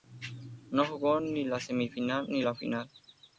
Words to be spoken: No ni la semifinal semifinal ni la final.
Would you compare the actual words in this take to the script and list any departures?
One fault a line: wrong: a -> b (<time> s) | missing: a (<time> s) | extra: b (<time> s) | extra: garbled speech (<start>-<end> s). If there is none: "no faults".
extra: jugó (0.8 s)
missing: semifinal (2.3 s)